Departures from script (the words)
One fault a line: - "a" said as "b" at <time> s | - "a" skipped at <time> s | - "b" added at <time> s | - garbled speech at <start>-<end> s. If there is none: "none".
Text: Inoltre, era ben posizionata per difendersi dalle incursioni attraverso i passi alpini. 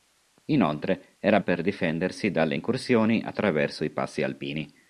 - "ben posizionata" skipped at 1.4 s